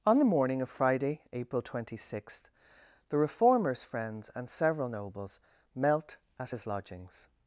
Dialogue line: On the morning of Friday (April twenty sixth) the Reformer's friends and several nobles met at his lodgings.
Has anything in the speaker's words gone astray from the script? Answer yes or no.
yes